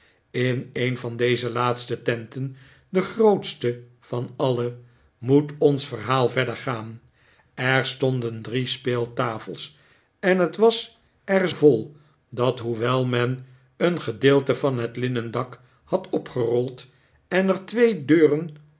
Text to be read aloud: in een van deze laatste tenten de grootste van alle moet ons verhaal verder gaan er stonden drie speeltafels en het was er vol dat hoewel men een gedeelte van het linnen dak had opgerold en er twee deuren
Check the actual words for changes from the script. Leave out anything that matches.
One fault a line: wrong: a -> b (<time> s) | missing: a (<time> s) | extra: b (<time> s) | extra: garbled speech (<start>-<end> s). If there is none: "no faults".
no faults